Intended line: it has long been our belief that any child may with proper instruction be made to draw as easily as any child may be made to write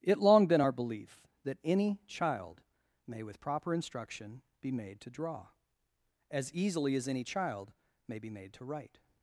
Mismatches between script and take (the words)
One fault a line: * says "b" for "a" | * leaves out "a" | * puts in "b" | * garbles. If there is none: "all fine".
* leaves out "has"